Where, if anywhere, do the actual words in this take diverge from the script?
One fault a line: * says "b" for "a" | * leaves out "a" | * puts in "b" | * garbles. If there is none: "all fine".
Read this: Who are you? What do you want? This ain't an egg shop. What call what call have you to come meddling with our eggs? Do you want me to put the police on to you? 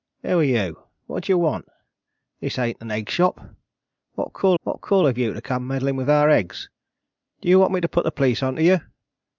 all fine